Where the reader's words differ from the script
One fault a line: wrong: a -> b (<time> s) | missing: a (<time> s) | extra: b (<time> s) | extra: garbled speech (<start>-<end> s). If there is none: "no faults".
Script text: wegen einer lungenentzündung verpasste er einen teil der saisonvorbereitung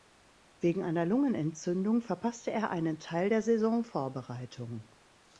no faults